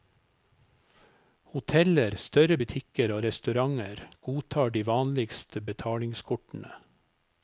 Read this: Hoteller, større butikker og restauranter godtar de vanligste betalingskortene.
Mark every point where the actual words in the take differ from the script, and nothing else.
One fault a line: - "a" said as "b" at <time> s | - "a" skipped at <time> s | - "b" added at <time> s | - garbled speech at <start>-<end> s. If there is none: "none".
none